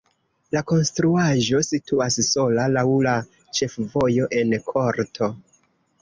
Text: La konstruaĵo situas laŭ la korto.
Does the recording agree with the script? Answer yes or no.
no